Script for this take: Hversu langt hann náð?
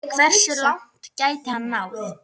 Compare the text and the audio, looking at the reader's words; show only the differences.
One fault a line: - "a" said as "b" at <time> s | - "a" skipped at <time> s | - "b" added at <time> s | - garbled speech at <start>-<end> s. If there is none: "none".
- "gæti" added at 1.2 s